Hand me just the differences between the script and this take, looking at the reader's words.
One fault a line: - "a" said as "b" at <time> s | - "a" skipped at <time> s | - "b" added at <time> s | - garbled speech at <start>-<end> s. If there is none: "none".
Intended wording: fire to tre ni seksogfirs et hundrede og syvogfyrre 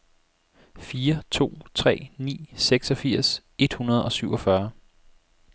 none